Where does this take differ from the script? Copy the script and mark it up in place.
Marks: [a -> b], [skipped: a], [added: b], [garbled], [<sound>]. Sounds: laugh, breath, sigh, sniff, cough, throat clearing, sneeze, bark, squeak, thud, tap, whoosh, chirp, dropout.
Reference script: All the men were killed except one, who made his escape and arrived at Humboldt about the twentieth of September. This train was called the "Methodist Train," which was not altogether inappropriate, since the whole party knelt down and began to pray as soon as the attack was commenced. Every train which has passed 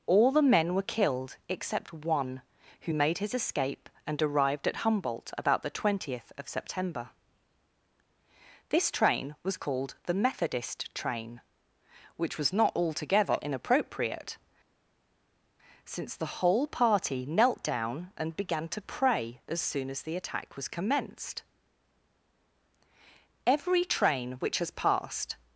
All the men were killed except one, who made his escape and arrived at Humboldt about the twentieth of September. This train was called the "Methodist Train," which was not altogether inappropriate, since the whole party knelt down and began to pray as soon as the attack was commenced. Every train which has passed